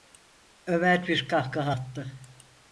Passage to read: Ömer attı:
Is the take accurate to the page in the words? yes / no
no